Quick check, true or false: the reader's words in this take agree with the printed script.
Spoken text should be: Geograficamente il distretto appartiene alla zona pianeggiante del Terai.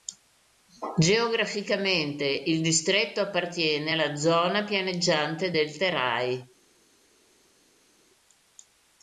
true